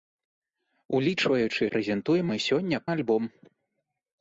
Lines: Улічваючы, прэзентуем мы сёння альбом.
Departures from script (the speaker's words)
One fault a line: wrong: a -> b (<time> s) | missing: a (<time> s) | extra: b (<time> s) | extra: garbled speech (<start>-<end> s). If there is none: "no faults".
no faults